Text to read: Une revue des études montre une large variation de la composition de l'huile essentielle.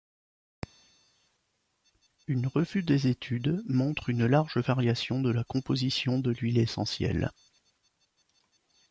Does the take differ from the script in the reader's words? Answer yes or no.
no